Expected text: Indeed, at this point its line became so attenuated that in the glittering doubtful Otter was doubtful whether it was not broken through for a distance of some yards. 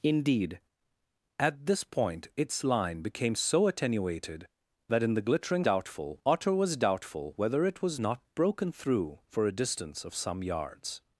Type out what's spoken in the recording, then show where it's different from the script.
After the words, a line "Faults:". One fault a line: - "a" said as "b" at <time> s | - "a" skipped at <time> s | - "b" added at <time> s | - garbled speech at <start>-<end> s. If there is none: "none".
Indeed, at this point its line became so attenuated that in the glittering doubtful Otter was doubtful whether it was not broken through for a distance of some yards.
Faults:
none